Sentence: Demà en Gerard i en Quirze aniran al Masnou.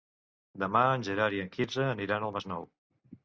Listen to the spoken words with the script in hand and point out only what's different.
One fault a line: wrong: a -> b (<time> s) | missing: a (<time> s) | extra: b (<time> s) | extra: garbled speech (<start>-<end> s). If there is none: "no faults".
no faults